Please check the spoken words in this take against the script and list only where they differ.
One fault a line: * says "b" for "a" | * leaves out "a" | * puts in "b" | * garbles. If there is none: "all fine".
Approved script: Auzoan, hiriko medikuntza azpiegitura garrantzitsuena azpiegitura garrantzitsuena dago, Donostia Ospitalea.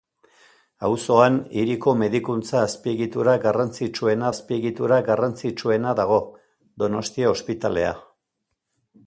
all fine